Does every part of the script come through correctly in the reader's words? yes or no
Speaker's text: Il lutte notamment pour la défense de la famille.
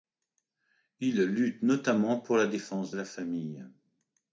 yes